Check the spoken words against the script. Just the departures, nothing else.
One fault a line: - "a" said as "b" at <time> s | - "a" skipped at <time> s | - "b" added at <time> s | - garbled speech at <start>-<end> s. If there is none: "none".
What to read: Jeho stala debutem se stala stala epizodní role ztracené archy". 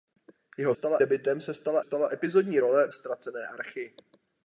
none